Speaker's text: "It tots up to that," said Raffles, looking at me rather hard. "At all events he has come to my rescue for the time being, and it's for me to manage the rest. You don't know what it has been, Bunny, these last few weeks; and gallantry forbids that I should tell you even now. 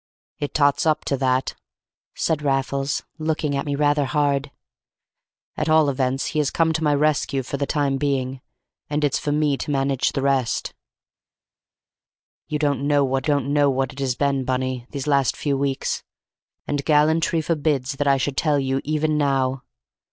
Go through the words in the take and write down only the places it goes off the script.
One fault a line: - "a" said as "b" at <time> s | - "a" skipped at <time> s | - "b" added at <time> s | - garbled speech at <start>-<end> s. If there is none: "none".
- "don't know what" added at 13.2 s